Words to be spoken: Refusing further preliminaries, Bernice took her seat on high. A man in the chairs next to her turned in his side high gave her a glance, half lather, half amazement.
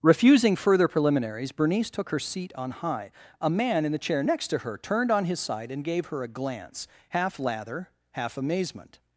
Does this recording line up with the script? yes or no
no